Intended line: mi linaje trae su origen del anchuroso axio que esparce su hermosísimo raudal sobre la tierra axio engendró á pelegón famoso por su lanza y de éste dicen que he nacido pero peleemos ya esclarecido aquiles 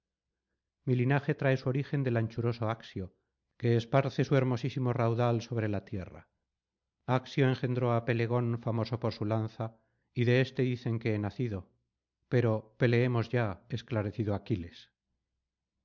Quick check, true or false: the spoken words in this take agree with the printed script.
true